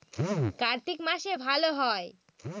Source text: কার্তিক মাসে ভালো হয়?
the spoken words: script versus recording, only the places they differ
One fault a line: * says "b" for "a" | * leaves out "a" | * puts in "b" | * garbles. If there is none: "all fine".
all fine